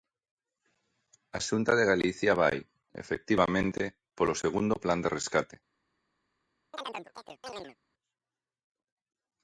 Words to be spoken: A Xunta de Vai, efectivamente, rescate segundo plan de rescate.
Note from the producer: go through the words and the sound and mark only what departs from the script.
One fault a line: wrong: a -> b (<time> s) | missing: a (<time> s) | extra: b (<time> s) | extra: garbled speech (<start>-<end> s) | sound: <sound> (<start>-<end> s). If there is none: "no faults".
extra: Galicia (1.9 s)
wrong: rescate -> polo (4.2 s)
sound: chirp (6.7-7.8 s)